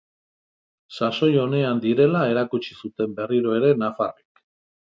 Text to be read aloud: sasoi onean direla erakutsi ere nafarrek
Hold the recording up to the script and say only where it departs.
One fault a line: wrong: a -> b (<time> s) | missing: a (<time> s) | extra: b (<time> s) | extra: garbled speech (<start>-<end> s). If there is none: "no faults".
extra: zuten berriro (2.8 s)